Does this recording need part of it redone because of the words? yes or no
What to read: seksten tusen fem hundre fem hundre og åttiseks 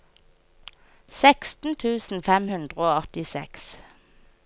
yes